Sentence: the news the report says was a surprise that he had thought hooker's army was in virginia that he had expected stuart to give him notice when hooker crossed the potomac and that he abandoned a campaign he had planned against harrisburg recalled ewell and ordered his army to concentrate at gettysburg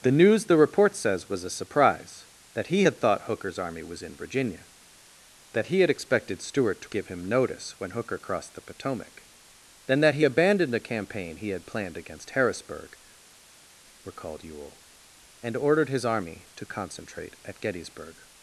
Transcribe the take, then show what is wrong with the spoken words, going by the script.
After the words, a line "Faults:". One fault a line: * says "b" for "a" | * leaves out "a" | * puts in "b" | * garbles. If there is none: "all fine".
the news the report says was a surprise that he had thought hooker's army was in virginia that he had expected stuart to give him notice when hooker crossed the potomac then that he abandoned a campaign he had planned against harrisburg recalled ewell and ordered his army to concentrate at gettysburg
Faults:
* says "then" for "and"